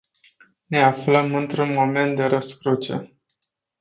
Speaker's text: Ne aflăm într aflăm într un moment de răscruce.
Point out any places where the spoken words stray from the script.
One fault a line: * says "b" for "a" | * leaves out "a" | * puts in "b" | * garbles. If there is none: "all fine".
* leaves out "aflăm într"